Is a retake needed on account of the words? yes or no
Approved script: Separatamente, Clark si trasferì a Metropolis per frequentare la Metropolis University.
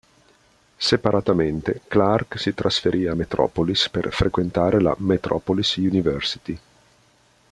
no